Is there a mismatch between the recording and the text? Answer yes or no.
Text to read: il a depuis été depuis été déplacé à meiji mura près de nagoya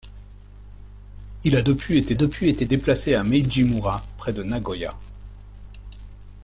no